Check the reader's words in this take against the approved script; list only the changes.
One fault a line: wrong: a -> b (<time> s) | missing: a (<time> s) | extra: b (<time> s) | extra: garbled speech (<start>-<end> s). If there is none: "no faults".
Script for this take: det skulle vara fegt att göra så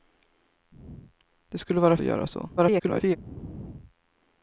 missing: fegt (2.0 s)
extra: garbled speech (2.6-3.2 s)